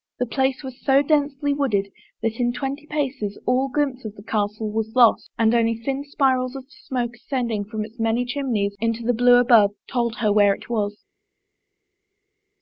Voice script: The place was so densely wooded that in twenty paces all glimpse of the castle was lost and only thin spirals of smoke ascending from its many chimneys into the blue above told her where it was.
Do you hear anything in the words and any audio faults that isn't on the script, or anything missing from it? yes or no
no